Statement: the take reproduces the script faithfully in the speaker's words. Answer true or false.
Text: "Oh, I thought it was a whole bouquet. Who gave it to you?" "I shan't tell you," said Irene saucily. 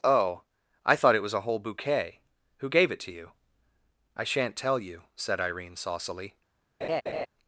true